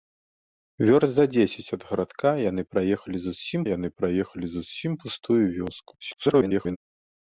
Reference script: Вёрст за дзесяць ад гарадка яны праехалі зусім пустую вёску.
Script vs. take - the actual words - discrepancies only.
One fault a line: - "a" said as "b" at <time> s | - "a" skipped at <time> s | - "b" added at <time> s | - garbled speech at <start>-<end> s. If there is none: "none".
- "яны праехалі зусім" added at 3.7 s
- garbled speech at 6.0-6.8 s